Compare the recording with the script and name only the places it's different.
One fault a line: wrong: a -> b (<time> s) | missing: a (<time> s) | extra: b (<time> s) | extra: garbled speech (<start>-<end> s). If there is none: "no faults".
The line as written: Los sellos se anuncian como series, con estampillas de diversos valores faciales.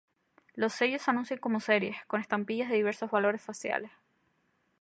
no faults